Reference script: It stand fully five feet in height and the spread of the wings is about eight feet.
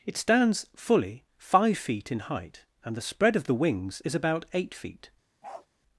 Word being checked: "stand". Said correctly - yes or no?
no